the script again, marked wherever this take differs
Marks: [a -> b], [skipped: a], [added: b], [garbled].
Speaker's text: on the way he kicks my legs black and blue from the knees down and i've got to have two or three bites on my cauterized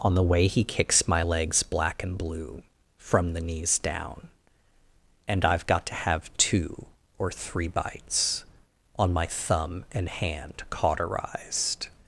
on the way he kicks my legs black and blue from the knees down and i've got to have two or three bites on my [added: thumb and hand] cauterized